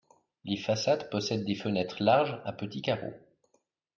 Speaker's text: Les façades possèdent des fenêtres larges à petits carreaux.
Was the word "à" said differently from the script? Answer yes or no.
no